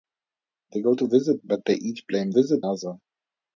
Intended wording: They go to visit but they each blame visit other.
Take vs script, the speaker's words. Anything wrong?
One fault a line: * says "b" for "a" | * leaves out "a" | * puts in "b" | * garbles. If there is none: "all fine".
all fine